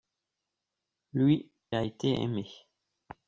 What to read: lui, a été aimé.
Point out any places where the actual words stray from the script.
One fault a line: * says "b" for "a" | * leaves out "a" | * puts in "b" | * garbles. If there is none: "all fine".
all fine